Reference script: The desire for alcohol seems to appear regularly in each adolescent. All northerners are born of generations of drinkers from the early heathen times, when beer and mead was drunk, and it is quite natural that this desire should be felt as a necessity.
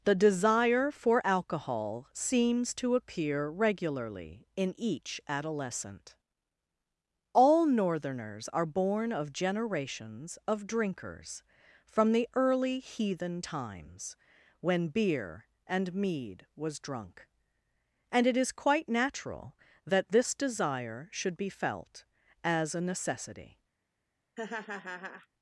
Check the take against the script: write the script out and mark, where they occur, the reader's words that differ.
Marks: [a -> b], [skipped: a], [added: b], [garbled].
The desire for alcohol seems to appear regularly in each adolescent. All northerners are born of generations of drinkers from the early heathen times, when beer and mead was drunk, and it is quite natural that this desire should be felt as a necessity.